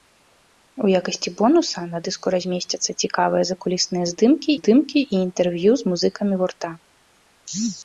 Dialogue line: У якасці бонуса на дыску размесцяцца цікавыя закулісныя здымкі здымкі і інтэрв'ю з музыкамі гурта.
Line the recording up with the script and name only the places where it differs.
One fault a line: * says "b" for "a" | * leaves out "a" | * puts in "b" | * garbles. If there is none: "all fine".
all fine